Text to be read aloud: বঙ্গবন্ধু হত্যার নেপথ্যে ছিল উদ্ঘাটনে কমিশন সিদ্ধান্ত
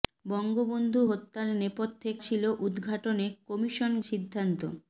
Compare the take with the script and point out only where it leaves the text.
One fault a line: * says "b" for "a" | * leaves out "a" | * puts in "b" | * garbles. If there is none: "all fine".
all fine